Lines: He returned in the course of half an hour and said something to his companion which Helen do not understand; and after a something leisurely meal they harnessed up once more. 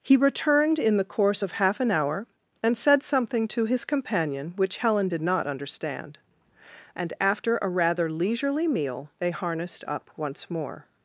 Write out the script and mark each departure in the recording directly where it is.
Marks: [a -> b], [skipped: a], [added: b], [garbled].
He returned in the course of half an hour and said something to his companion which Helen [do -> did] not understand; and after a [something -> rather] leisurely meal they harnessed up once more.